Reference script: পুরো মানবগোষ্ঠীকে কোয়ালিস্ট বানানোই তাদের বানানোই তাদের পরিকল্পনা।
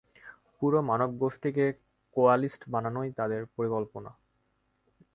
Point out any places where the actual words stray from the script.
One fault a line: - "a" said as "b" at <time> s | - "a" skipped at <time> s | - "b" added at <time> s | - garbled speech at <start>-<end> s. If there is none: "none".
- "বানানোই তাদের" skipped at 3.4 s